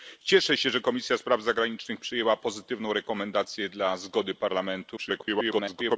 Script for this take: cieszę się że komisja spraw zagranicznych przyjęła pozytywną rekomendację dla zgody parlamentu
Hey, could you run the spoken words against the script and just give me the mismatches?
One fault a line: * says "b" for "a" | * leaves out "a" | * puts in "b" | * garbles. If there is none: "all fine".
* garbles